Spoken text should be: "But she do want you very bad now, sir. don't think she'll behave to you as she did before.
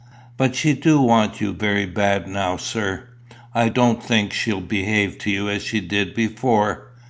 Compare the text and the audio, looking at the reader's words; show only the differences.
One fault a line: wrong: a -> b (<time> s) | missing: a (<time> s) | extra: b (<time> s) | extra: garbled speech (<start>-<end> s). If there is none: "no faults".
extra: I (3.5 s)